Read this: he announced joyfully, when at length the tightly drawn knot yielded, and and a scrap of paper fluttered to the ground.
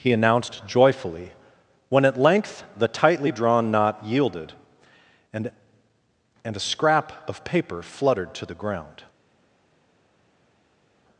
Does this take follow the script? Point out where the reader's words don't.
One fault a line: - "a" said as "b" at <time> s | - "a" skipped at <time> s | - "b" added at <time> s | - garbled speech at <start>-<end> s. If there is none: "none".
none